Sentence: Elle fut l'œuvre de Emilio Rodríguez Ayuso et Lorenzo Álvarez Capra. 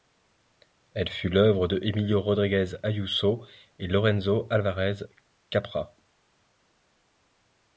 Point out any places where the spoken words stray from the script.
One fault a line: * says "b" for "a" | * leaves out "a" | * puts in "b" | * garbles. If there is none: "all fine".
all fine